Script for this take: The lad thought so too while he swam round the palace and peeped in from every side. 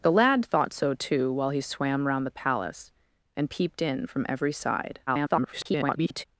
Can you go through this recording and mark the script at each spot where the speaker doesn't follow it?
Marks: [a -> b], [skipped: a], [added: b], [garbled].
The lad thought so too while he swam round the palace and peeped in from every side. [garbled]